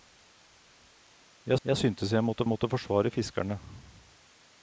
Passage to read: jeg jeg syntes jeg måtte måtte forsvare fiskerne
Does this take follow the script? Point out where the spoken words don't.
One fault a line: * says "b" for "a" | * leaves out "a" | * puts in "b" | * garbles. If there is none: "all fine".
all fine